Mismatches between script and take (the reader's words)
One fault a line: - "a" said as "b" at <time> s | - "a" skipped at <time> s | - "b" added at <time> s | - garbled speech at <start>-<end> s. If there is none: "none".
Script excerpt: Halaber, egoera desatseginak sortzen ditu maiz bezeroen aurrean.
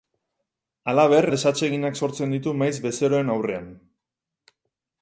- "egoera" skipped at 1.2 s